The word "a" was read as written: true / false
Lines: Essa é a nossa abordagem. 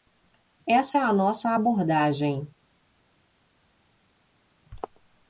true